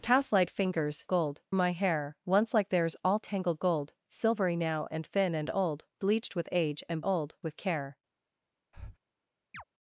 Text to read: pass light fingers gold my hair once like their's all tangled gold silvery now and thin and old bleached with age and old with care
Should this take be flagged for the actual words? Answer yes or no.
no